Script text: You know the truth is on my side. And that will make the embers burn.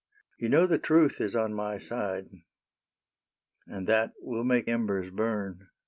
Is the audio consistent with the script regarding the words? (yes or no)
no